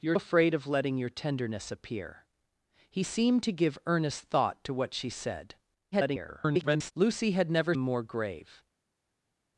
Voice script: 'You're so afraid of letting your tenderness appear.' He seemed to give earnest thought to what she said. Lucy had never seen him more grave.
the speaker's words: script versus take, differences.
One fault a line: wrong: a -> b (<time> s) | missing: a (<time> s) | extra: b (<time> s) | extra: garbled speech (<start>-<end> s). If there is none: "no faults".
missing: so (0.1 s)
extra: garbled speech (5.9-6.9 s)
missing: seen him (7.7 s)